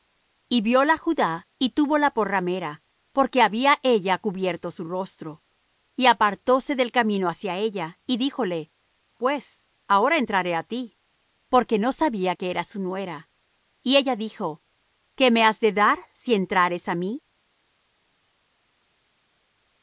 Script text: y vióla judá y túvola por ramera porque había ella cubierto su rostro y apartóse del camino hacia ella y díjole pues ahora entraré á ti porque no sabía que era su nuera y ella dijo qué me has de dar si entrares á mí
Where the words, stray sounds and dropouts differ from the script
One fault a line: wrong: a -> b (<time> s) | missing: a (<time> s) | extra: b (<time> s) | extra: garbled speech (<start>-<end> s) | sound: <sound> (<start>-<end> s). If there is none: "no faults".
no faults